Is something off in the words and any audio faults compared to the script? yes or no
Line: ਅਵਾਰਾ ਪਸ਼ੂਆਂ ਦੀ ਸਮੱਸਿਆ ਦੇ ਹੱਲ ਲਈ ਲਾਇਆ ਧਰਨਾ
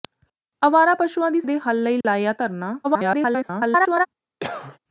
yes